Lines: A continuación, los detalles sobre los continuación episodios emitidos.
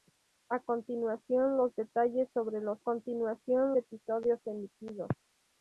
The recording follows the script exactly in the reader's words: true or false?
true